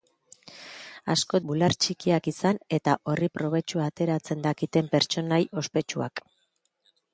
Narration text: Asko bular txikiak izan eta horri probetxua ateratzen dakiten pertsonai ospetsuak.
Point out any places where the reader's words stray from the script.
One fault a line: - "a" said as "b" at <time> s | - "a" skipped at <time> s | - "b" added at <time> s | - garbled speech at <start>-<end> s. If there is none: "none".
none